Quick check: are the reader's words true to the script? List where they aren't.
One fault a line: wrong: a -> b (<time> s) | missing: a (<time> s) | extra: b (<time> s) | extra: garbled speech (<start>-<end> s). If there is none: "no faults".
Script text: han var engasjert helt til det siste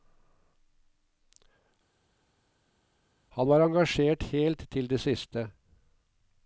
no faults